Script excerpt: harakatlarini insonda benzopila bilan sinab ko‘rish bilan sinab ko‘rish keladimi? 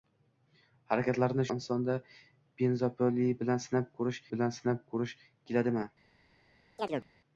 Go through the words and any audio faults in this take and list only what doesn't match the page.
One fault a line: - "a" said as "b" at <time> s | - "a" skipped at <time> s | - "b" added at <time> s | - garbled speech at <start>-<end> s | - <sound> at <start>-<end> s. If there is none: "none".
- chirp at 6.8-7.1 s